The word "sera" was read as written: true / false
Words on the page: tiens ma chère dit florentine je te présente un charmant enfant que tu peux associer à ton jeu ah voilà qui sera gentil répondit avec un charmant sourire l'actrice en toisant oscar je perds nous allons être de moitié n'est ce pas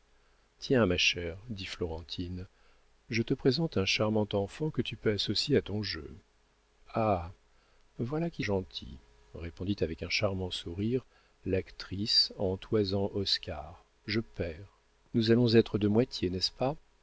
false